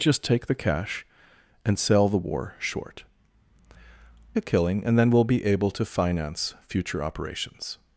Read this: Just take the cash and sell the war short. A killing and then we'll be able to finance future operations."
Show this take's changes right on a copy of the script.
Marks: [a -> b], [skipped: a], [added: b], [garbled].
Just take the cash and sell the war short. A killing and then we'll be able to finance future operations."